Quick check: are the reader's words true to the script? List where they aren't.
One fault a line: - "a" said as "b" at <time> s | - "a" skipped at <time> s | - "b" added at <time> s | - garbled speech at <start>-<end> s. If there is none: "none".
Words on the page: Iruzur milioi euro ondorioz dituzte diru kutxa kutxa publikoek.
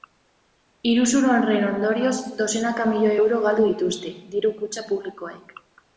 - "horren ondorioz dozenaka" added at 1.3 s
- "ondorioz" said as "galdu" at 3.5 s
- "kutxa" skipped at 4.8 s